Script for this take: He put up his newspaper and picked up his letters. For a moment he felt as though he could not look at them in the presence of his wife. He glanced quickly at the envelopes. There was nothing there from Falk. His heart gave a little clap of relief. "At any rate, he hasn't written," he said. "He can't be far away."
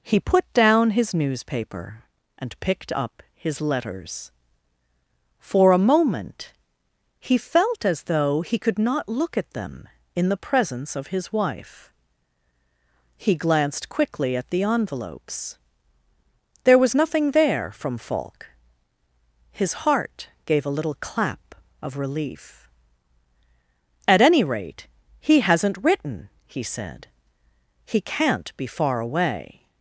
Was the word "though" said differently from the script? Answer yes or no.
no